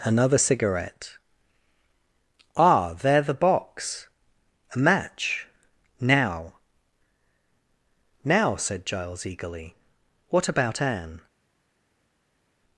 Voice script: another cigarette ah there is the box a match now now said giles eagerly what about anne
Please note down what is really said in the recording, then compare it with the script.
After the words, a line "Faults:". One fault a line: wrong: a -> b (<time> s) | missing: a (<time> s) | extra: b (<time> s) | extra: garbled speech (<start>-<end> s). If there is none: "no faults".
another cigarette ah there the box a match now now said giles eagerly what about anne
Faults:
missing: is (3.2 s)